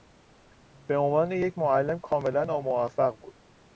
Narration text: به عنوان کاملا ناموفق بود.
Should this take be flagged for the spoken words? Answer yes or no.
yes